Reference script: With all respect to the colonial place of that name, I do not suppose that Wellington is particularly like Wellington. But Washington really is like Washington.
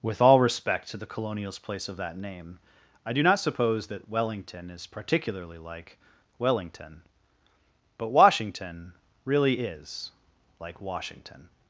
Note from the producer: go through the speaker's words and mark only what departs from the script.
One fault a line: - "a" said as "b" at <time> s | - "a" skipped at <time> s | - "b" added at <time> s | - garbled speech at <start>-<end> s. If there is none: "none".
- "colonial" said as "colonials" at 1.1 s